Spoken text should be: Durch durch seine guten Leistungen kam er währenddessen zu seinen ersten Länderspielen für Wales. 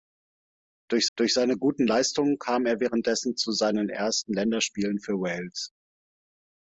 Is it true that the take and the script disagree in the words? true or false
false